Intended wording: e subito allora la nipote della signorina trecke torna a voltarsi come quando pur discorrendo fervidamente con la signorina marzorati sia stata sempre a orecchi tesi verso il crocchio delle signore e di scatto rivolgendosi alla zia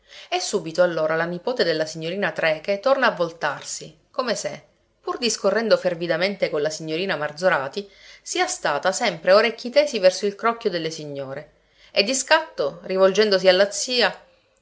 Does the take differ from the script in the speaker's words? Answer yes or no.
yes